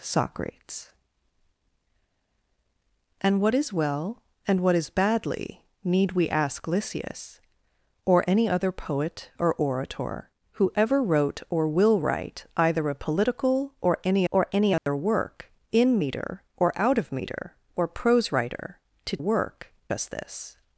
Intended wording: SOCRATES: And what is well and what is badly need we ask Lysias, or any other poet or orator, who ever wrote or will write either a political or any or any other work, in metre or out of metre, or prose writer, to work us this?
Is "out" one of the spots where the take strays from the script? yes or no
no